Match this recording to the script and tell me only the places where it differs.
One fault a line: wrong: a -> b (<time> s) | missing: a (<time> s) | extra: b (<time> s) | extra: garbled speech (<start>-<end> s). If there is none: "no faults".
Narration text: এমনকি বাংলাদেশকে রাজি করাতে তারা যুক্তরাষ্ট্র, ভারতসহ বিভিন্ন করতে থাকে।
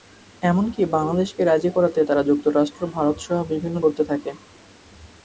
no faults